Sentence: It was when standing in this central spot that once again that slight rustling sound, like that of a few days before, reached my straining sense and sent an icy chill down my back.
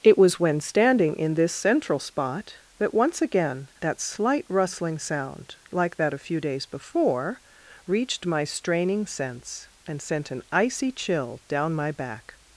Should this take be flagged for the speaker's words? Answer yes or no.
yes